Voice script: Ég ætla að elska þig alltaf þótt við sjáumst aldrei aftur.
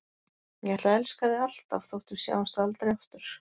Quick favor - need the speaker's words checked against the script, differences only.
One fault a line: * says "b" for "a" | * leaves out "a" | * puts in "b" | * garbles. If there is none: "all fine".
all fine